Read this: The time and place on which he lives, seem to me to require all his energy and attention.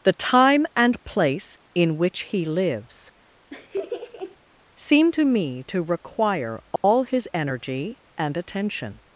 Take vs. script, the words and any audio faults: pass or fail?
fail